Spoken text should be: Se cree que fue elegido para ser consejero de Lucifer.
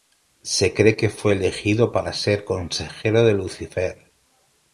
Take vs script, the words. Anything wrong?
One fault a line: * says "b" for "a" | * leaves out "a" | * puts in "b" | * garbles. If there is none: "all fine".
all fine